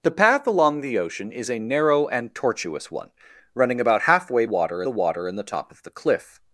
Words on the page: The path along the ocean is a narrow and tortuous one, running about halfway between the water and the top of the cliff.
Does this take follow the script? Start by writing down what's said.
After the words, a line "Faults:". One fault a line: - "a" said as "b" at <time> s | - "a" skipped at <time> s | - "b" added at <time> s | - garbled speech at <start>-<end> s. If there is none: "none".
The path along the ocean is a narrow and tortuous one, running about halfway water the water and the top of the cliff.
Faults:
- "between" said as "water" at 4.4 s